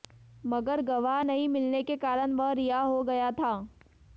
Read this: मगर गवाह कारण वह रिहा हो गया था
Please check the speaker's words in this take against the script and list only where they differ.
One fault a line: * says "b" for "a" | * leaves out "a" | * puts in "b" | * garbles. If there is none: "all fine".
* puts in "नहीं मिलने के"